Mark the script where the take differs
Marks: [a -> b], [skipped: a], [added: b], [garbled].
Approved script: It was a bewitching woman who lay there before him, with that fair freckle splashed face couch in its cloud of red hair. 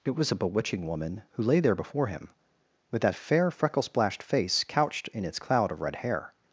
It was a bewitching woman who lay there before him, with that fair freckle splashed face [couch -> couched] in its cloud of red hair.